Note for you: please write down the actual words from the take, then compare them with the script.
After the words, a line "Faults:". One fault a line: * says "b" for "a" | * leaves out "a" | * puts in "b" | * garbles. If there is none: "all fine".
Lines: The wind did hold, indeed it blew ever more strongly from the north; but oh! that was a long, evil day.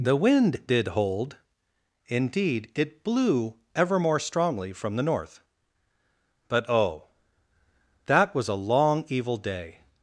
The wind did hold, indeed it blew ever more strongly from the north; but oh! that was a long, evil day.
Faults:
all fine